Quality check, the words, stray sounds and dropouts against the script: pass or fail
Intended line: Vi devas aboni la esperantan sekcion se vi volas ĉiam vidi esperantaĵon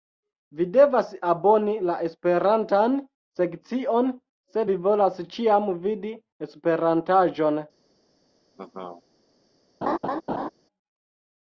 fail